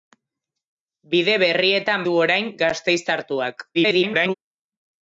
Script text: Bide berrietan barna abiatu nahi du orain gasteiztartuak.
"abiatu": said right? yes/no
no